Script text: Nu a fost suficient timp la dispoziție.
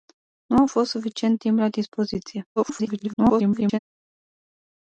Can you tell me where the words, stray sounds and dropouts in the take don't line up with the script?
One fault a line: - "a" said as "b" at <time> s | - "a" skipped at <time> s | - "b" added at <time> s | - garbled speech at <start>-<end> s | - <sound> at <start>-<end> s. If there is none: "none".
- garbled speech at 2.6-3.8 s